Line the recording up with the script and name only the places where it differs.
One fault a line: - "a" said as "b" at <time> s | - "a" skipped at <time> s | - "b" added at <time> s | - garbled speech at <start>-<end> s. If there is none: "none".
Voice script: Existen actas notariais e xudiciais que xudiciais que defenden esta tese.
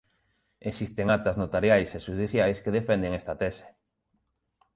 - "xudiciais que" skipped at 2.7 s